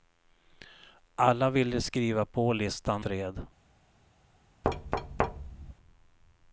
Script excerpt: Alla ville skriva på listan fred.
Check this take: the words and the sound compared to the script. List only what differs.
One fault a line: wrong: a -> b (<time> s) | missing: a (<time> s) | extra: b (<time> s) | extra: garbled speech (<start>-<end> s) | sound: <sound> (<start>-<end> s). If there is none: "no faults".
sound: thud (4.6-5.7 s)